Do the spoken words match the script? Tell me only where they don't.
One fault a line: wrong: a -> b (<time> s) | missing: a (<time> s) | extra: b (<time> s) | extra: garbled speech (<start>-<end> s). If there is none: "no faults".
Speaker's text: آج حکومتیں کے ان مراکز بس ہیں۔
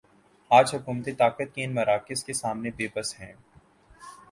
extra: طاقت (1.1 s)
extra: کے سامنے بے (2.2 s)